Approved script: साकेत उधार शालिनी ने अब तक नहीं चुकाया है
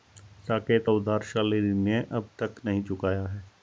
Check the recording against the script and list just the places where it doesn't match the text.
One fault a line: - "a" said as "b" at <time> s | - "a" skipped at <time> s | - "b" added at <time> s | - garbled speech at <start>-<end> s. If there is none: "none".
none